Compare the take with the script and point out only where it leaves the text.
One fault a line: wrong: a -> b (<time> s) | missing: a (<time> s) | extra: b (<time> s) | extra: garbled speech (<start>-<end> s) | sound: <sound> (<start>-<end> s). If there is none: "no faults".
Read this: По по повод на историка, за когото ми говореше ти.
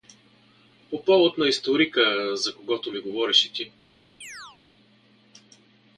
missing: по (1.1 s)
sound: chirp (4.2-4.6 s)